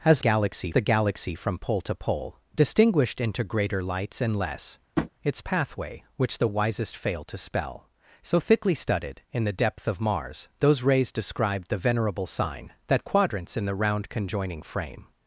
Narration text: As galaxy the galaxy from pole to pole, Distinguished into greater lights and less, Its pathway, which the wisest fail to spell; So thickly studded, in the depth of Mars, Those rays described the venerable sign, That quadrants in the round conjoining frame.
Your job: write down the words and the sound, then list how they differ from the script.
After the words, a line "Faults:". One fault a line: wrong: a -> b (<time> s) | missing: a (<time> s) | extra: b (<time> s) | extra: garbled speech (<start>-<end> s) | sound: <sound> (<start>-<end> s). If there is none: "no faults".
As galaxy the galaxy from pole to pole, Distinguished into greater lights and less, Its pathway, which the wisest fail to spell; So thickly studded, in the depth of Mars, Those rays described the venerable sign, That quadrants in the round conjoining frame.
Faults:
sound: tap (5.0-5.1 s)